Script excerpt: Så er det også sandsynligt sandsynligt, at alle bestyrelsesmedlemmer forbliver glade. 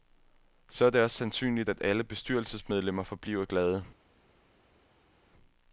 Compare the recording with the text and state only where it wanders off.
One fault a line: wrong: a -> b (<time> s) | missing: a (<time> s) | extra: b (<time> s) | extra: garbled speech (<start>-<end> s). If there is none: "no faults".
missing: sandsynligt (1.7 s)